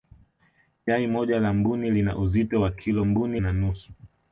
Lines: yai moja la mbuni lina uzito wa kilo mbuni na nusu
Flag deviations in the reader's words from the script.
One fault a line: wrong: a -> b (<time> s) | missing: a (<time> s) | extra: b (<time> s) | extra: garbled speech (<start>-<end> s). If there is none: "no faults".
no faults